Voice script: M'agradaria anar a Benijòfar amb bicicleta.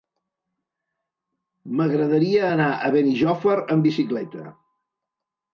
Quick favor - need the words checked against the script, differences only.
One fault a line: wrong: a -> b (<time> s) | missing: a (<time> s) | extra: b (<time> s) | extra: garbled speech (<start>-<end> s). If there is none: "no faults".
no faults